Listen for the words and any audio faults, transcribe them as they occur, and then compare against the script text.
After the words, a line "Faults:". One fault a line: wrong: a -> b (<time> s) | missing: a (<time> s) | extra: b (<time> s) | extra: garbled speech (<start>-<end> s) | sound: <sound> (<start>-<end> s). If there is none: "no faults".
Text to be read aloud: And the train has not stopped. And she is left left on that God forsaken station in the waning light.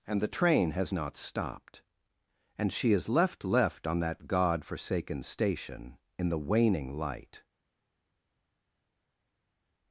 And the train has not stopped. And she is left left on that God forsaken station in the waning light.
Faults:
no faults